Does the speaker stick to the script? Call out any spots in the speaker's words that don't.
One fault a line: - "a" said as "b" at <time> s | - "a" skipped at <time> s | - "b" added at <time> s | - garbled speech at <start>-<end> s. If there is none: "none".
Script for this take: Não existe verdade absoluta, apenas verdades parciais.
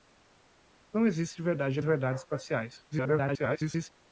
- "absoluta apenas" skipped at 1.8 s
- garbled speech at 2.9-3.9 s